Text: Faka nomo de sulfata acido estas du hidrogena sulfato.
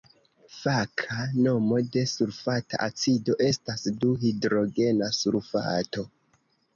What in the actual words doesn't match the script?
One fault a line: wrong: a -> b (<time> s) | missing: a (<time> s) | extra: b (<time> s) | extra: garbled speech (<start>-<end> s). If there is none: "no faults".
no faults